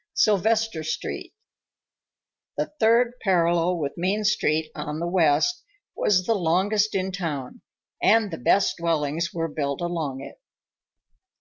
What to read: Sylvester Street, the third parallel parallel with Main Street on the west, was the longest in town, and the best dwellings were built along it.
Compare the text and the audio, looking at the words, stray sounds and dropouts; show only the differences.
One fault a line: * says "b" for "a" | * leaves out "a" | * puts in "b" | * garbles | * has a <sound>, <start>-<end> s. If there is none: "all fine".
* leaves out "parallel"